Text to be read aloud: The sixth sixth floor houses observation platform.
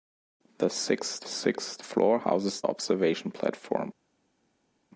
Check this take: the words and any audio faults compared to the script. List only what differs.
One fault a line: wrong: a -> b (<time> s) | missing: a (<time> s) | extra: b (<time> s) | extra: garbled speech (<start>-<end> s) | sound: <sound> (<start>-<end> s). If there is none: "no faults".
no faults